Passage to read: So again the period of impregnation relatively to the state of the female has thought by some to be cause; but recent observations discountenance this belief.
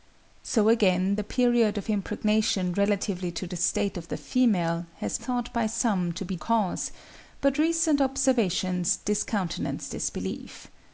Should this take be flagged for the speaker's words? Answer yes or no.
no